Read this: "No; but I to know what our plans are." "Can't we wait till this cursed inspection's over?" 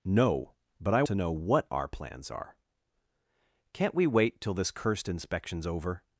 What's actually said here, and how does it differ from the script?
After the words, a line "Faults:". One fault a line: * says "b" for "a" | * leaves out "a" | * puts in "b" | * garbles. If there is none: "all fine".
"No; but I to know what our plans are." "Can't we wait till this cursed inspection's over?"
Faults:
all fine